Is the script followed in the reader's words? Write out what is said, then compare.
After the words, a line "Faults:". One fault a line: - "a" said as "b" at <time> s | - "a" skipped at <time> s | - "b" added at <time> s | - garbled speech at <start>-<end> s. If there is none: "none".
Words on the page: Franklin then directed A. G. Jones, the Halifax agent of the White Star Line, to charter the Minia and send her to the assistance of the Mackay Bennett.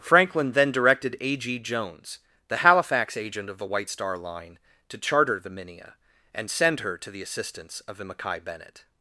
Franklin then directed A. G. Jones, the Halifax agent of the White Star Line, to charter the Minia and send her to the assistance of the Mackay Bennett.
Faults:
none